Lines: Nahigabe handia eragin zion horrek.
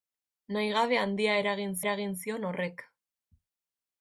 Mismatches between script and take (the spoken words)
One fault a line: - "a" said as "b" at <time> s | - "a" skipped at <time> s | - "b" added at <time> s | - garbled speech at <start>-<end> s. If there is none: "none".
- "eragin" added at 1.8 s